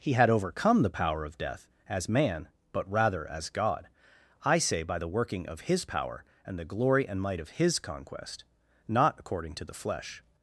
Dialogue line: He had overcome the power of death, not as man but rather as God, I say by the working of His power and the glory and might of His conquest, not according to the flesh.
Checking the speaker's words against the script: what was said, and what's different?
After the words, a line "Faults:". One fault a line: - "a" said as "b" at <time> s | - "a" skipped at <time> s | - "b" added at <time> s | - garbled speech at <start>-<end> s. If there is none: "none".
He had overcome the power of death, as man but rather as God, I say by the working of His power and the glory and might of His conquest, not according to the flesh.
Faults:
- "not" skipped at 1.7 s